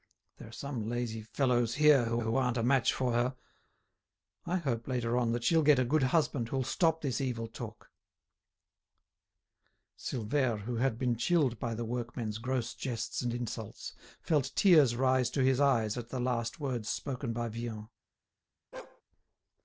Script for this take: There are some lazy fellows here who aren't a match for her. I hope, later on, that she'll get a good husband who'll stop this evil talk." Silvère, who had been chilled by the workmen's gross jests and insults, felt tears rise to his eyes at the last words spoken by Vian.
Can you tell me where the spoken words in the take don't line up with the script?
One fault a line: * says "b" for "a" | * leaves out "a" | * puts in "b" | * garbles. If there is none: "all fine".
* puts in "who"